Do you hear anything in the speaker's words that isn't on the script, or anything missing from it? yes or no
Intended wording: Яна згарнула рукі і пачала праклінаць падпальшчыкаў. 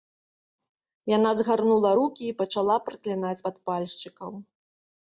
no